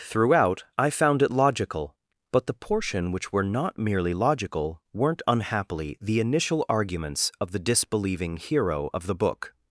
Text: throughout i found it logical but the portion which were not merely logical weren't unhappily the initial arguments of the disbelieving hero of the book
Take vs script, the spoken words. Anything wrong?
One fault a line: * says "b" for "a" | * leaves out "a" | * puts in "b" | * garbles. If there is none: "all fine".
all fine